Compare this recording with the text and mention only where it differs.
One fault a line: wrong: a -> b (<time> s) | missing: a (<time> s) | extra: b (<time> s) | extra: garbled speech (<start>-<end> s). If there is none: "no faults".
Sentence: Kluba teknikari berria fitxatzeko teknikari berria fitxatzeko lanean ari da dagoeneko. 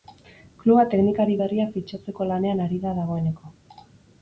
missing: teknikari berria fitxatzeko (2.3 s)